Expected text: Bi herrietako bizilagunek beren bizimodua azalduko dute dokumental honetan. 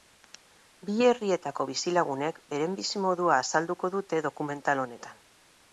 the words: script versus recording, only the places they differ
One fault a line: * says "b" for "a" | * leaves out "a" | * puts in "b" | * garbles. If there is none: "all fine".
all fine